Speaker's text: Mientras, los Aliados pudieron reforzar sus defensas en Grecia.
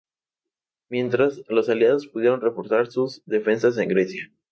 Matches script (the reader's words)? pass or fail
pass